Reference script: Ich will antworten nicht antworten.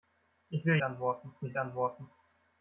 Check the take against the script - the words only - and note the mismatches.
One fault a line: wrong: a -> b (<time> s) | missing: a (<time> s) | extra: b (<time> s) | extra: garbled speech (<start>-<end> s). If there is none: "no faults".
no faults